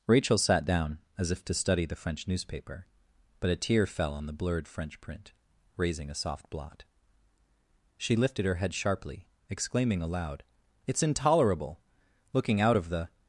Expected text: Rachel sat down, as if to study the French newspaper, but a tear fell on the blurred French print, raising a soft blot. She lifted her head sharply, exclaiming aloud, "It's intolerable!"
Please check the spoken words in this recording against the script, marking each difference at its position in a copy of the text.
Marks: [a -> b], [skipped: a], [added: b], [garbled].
Rachel sat down, as if to study the French newspaper, but a tear fell on the blurred French print, raising a soft blot. She lifted her head sharply, exclaiming aloud, "It's intolerable!" [added: Looking out of the]